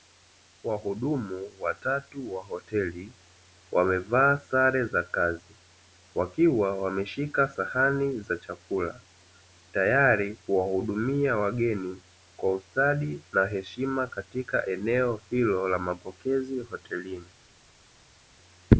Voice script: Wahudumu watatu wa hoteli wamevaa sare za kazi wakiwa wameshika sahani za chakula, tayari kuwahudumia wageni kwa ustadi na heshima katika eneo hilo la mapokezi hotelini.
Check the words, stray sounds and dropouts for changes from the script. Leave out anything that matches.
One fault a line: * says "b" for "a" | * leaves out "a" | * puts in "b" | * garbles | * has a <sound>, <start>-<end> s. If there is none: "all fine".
all fine